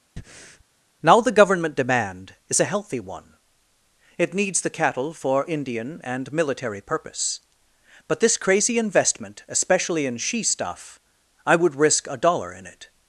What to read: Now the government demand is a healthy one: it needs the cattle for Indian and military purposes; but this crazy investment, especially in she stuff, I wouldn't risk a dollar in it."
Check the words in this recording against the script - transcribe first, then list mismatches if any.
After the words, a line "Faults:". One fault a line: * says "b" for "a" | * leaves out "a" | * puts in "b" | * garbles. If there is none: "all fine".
Now the government demand is a healthy one: it needs the cattle for Indian and military purpose; but this crazy investment, especially in she stuff, I would risk a dollar in it."
Faults:
* says "purpose" for "purposes"
* says "would" for "wouldn't"